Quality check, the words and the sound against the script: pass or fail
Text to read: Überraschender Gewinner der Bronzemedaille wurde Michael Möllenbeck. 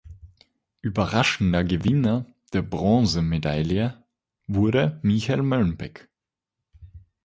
pass